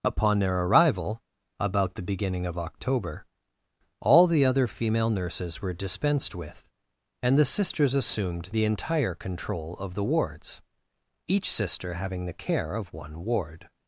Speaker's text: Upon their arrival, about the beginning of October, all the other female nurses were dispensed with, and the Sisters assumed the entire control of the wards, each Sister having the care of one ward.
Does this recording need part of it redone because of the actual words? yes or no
no